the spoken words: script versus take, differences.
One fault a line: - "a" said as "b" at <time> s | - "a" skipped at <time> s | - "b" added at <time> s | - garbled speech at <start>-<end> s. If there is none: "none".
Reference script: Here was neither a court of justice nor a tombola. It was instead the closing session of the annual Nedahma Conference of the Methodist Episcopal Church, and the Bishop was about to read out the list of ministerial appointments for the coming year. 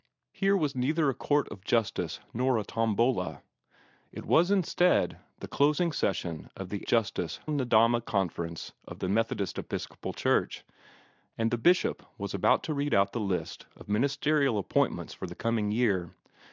- "annual" said as "justice" at 6.8 s